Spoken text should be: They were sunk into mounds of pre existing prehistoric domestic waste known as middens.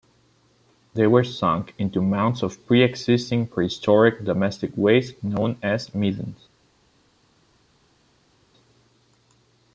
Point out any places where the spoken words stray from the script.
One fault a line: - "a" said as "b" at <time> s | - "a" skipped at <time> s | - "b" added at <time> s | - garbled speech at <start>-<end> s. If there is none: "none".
none